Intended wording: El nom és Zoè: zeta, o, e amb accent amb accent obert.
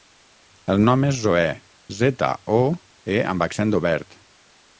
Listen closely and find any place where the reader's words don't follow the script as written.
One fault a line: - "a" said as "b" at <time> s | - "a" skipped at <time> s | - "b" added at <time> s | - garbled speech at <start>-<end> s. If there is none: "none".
- "amb accent" skipped at 3.8 s